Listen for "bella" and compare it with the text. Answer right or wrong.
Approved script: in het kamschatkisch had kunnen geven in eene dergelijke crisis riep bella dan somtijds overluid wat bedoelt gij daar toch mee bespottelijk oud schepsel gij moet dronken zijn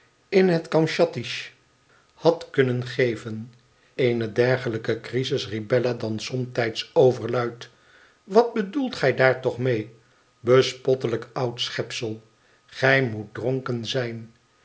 right